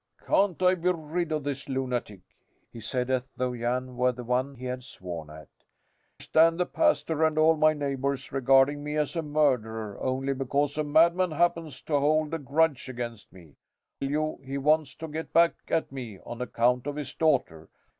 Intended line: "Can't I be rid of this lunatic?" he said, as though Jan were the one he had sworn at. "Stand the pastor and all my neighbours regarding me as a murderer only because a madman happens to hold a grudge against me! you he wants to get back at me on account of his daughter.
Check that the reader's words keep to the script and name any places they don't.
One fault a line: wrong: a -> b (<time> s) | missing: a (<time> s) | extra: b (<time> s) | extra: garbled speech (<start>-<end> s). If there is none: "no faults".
no faults